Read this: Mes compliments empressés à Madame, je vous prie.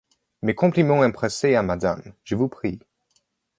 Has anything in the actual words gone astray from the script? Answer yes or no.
no